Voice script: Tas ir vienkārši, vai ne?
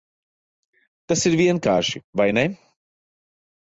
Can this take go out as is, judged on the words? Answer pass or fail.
pass